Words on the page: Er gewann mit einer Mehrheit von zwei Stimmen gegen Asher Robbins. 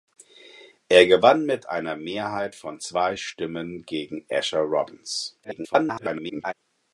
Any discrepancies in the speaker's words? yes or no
yes